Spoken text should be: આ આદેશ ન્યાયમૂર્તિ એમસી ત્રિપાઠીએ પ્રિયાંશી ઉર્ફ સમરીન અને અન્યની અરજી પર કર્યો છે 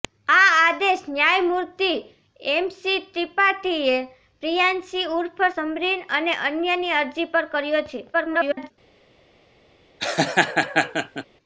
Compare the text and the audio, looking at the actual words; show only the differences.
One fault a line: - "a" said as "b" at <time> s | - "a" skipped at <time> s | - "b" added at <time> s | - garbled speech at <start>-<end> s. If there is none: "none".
- garbled speech at 8.1-8.7 s